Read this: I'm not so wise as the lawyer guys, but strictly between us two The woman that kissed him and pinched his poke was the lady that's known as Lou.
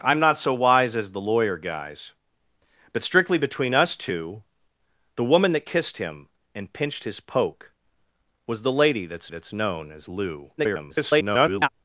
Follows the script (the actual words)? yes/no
no